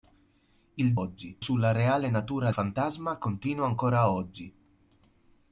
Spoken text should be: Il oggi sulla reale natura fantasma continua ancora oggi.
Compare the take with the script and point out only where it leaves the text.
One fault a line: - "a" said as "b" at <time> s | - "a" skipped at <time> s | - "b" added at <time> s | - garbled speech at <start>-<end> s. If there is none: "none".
none